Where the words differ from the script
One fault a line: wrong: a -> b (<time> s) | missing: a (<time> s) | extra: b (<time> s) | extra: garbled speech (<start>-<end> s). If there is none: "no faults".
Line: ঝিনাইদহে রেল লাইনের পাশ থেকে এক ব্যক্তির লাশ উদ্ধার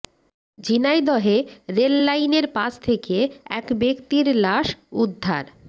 no faults